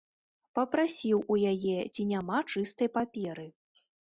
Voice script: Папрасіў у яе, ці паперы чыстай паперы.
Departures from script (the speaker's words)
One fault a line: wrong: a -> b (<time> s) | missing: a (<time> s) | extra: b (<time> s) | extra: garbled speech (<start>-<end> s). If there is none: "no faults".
wrong: паперы -> няма (2.1 s)